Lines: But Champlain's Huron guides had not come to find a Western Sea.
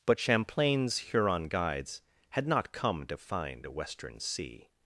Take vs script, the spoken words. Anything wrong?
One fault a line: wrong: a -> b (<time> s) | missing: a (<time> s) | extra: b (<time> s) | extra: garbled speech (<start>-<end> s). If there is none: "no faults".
no faults